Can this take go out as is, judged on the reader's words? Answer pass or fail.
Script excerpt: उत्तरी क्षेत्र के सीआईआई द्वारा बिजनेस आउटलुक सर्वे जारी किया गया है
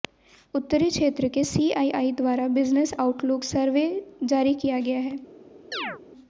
pass